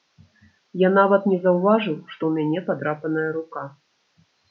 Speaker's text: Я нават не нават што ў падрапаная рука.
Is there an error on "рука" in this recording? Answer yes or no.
no